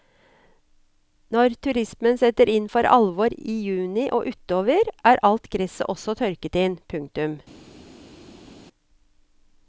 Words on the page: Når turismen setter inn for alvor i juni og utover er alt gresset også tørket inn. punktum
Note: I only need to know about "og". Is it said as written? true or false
true